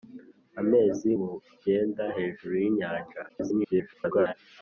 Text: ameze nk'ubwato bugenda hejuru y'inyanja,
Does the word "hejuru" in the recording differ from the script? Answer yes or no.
no